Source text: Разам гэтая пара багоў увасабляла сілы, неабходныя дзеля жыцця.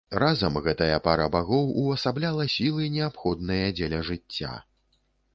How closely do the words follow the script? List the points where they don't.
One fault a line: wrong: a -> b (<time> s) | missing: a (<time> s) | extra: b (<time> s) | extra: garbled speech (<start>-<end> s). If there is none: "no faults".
no faults